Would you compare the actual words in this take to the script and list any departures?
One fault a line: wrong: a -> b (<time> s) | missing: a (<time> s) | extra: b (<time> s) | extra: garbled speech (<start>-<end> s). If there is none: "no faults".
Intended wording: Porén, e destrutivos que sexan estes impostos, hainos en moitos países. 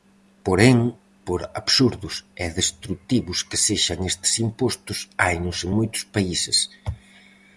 extra: por absurdos (1.3 s)